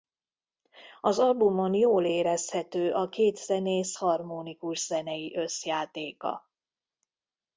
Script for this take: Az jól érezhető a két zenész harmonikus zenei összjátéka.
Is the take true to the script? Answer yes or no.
no